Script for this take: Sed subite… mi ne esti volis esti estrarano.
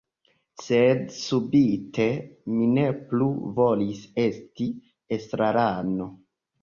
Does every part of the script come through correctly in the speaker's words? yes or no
no